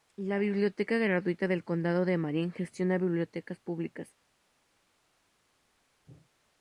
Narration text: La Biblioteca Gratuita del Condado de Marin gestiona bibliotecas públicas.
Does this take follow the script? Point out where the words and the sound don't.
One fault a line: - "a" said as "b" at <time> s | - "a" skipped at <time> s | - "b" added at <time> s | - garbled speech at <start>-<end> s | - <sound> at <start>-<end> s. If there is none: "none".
none